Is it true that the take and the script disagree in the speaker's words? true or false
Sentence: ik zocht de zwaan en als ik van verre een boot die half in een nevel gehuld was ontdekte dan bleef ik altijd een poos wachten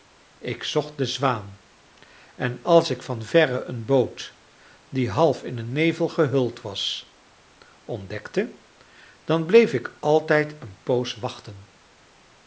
false